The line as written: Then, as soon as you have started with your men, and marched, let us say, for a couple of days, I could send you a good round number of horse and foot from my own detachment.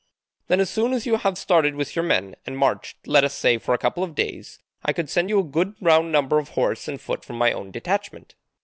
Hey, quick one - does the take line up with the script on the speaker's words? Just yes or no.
yes